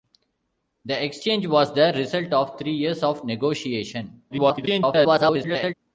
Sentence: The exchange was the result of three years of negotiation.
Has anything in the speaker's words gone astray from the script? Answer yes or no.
yes